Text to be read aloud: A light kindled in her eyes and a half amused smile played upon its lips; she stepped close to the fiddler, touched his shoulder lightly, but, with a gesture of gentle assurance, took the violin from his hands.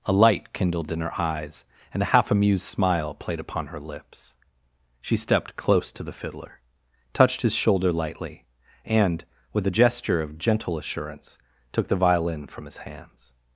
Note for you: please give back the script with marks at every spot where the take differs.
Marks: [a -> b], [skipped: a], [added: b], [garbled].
A light kindled in her eyes and a half amused smile played upon [its -> her] lips; she stepped close to the fiddler, touched his shoulder lightly, [but, -> and] with a gesture of gentle assurance, took the violin from his hands.